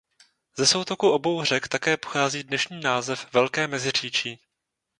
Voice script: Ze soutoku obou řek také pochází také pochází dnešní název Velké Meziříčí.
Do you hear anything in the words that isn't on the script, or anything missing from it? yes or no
yes